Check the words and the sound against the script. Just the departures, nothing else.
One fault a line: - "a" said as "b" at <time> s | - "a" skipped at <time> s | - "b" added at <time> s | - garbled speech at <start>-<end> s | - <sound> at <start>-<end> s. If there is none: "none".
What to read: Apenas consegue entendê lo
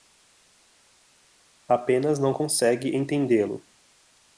- "não" added at 2.2 s